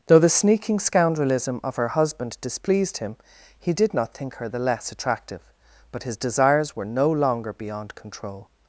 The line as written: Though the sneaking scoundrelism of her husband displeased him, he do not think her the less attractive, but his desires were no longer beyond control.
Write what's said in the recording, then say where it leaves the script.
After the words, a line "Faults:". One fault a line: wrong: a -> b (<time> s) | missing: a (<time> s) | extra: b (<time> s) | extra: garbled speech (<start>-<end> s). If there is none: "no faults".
Though the sneaking scoundrelism of her husband displeased him, he did not think her the less attractive, but his desires were no longer beyond control.
Faults:
wrong: do -> did (3.7 s)